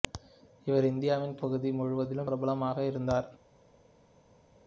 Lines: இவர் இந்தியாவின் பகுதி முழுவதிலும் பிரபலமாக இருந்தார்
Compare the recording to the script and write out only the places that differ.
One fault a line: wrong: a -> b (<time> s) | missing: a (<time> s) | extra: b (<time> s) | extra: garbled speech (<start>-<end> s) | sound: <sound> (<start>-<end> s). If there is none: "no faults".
no faults